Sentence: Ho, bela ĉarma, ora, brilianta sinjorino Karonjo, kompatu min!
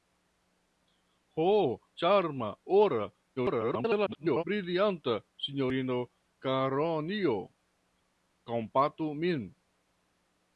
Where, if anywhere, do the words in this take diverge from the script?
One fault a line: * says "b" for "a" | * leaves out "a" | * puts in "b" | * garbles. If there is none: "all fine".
* leaves out "bela"
* garbles